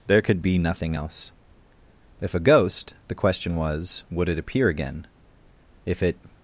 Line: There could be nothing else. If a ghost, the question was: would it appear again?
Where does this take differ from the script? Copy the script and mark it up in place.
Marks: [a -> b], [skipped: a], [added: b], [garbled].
There could be nothing else. If a ghost, the question was: would it appear again? [added: If it]